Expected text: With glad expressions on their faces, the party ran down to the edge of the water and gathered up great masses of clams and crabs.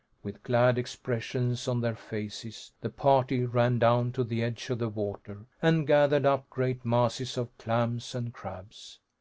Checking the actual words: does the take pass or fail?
pass